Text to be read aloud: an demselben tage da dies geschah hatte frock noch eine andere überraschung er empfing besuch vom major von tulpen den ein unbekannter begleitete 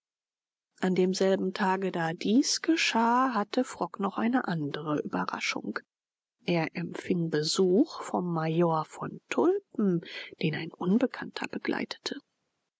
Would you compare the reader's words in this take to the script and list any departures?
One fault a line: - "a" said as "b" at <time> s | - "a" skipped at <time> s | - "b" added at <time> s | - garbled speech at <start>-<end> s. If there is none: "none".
none